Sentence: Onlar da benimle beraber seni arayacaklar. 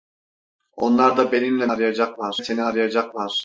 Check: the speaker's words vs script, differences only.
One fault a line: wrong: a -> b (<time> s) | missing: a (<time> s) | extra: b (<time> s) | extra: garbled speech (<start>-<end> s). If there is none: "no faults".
wrong: beraber -> arayacaklar (1.7 s)